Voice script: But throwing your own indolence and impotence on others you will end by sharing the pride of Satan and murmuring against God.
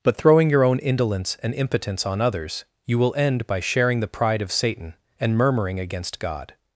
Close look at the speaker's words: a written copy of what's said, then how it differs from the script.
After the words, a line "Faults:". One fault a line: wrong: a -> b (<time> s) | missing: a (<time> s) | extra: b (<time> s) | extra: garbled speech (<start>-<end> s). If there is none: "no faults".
But throwing your own indolence and impotence on others you will end by sharing the pride of Satan and murmuring against God.
Faults:
no faults